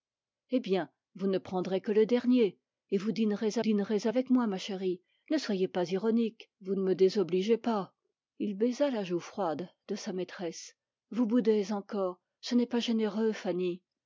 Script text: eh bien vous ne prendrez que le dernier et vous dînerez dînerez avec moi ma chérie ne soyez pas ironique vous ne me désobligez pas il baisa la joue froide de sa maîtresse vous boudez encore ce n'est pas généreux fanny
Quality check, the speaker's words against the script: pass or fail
pass